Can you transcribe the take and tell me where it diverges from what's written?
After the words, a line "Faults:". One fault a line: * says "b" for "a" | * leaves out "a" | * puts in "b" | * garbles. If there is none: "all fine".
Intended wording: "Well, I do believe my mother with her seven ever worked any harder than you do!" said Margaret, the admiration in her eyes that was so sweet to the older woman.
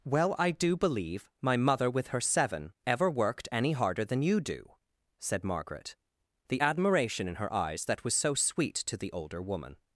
"Well, I do believe my mother with her seven ever worked any harder than you do!" said Margaret, the admiration in her eyes that was so sweet to the older woman.
Faults:
all fine